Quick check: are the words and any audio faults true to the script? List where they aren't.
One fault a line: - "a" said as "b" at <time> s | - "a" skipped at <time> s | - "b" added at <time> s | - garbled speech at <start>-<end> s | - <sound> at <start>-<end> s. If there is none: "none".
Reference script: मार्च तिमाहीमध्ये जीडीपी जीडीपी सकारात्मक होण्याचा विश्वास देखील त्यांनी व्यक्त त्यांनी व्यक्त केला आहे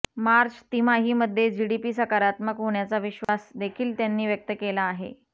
- "जीडीपी" skipped at 1.9 s
- dropout at 3.2-3.3 s
- "त्यांनी व्यक्त" skipped at 4.5 s